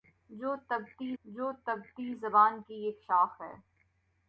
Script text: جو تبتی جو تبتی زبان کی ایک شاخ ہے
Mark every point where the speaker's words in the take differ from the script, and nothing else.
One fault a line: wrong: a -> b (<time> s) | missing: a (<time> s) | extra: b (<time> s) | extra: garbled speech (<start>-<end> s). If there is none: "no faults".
no faults